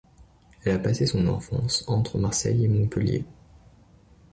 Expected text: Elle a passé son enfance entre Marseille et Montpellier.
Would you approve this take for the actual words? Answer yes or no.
yes